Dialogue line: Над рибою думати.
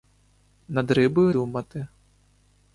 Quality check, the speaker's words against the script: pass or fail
pass